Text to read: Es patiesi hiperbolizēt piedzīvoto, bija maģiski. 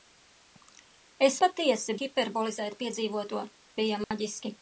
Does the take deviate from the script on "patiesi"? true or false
false